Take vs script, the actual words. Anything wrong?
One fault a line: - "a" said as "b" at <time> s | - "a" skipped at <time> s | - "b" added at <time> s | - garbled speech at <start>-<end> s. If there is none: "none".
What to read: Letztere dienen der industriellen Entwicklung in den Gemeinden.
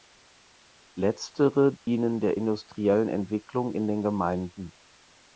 none